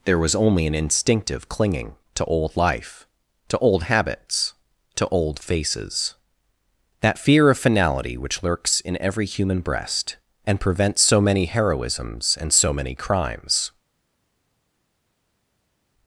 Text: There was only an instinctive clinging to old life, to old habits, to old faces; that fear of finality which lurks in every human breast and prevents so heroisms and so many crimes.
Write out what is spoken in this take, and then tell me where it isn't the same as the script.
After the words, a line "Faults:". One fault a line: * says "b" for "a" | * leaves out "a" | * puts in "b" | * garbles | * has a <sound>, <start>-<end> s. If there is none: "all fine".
There was only an instinctive clinging to old life, to old habits, to old faces; that fear of finality which lurks in every human breast and prevents so many heroisms and so many crimes.
Faults:
* puts in "many"